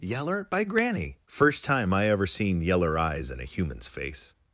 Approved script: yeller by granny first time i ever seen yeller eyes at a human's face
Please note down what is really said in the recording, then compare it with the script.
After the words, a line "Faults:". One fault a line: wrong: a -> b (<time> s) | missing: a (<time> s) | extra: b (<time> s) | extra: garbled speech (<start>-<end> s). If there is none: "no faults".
yeller by granny first time i ever seen yeller eyes in a human's face
Faults:
wrong: at -> in (3.3 s)